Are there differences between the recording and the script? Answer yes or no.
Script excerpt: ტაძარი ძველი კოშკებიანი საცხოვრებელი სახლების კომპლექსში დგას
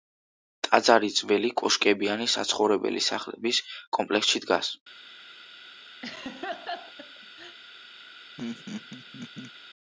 no